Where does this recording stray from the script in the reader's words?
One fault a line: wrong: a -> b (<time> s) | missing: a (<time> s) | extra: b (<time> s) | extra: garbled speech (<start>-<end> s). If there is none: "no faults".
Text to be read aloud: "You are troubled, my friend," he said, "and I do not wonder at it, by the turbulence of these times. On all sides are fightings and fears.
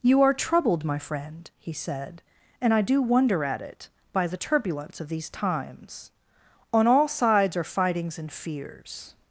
missing: not (3.0 s)